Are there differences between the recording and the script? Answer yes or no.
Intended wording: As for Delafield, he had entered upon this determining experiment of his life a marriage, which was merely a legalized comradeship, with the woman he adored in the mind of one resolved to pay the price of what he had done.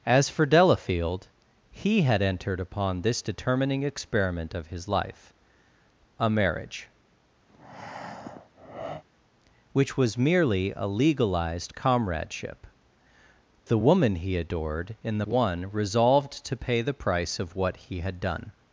yes